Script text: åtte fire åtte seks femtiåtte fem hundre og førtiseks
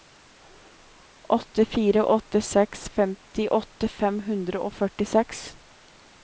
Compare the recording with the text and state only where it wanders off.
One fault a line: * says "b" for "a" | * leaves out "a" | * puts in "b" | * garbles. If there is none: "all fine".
all fine